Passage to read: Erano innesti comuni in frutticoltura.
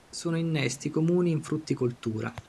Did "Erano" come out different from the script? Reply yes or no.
yes